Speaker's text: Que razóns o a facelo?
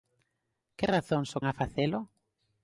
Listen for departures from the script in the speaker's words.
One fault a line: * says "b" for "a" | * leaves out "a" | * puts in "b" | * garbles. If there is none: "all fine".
all fine